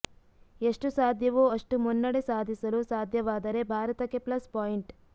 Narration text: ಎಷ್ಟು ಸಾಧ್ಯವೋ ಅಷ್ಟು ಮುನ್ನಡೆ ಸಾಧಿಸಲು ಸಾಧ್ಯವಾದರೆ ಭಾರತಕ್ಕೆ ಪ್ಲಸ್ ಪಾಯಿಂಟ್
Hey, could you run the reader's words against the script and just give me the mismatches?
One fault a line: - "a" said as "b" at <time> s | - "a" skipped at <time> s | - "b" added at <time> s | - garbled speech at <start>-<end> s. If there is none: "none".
none